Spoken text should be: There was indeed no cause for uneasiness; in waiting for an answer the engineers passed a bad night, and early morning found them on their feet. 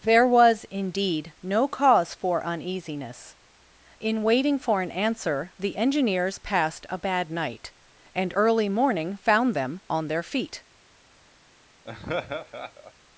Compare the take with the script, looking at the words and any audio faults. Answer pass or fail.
fail